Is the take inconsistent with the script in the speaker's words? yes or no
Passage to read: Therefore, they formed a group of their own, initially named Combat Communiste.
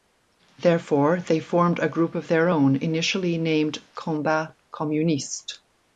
no